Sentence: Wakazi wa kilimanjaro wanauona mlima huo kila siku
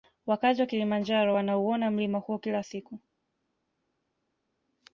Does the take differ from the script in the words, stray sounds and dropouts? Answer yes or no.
no